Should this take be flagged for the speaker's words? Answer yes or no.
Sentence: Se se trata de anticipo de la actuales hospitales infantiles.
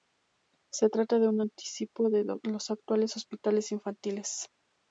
yes